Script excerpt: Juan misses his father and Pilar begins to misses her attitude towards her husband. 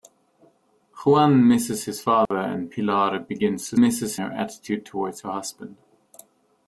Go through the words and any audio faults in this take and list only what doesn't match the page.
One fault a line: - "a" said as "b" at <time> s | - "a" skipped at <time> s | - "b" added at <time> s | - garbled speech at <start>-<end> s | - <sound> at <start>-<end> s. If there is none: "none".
- dropout at 2.3-2.3 s